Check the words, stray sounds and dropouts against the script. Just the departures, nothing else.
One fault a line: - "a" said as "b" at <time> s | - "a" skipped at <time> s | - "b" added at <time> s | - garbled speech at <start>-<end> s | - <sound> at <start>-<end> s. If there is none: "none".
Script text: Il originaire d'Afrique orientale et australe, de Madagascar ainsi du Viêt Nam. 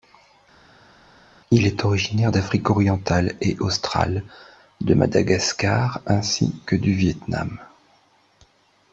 - "est" added at 1.7 s
- "que" added at 6.6 s